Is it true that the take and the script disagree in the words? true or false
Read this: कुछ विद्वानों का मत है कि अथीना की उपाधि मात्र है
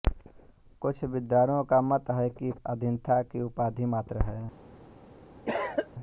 false